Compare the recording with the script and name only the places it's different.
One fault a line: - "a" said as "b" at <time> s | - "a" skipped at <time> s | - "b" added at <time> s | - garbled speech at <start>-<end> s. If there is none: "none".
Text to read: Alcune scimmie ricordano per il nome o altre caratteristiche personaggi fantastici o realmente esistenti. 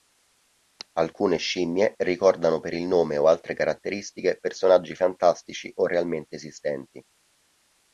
none